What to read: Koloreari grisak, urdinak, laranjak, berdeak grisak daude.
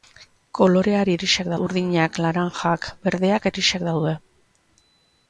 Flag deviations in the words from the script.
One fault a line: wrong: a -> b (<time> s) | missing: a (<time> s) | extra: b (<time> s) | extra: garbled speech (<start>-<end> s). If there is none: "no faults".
no faults